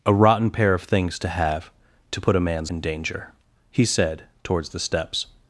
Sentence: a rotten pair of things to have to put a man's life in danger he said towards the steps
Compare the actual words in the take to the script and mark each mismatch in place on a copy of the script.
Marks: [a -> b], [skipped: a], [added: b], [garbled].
a rotten pair of things to have to put a man's [skipped: life] in danger he said towards the steps